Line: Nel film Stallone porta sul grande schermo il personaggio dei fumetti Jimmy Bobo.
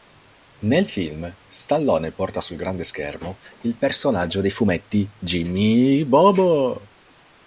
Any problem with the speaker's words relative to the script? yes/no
no